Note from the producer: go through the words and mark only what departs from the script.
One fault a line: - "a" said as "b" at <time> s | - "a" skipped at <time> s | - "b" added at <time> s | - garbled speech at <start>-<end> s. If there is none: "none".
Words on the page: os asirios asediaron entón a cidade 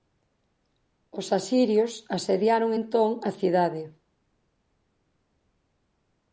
none